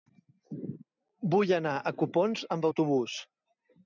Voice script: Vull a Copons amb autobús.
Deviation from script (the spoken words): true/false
true